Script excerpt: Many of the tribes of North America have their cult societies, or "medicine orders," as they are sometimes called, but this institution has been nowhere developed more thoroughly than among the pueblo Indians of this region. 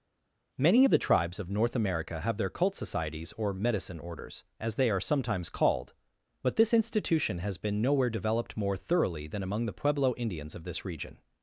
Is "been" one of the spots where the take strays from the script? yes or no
no